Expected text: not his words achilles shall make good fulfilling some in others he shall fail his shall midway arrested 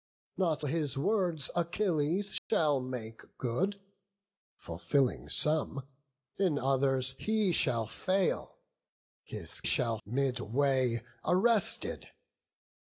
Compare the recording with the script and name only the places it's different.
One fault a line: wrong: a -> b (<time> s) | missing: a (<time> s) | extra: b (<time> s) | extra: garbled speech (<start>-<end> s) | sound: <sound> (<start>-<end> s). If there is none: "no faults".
sound: dropout (2.4-2.5 s)